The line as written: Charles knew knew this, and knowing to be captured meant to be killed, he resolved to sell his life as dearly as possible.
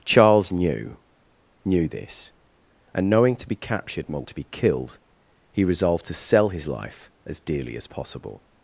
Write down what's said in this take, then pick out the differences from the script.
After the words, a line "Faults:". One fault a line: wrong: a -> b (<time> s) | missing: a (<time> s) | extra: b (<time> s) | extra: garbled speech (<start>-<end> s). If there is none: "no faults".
Charles knew knew this, and knowing to be captured meant to be killed, he resolved to sell his life as dearly as possible.
Faults:
no faults